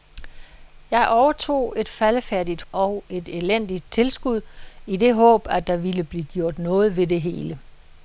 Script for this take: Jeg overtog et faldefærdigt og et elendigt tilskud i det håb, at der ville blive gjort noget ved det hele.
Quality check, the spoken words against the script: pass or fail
pass